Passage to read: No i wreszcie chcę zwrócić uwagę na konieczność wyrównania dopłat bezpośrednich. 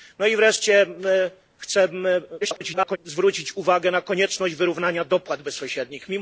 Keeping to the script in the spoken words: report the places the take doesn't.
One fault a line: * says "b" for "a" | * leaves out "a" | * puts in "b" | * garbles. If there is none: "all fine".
* garbles